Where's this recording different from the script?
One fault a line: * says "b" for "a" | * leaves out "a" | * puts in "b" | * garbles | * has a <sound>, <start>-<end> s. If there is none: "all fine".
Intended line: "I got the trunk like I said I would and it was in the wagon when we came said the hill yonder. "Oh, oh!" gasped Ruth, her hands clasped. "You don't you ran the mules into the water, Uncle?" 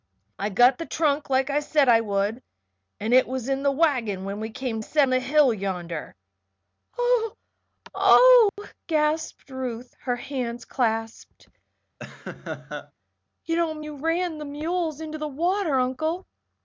* has a dropout, 8.5-8.6 s
* has a laugh, 12.0-12.9 s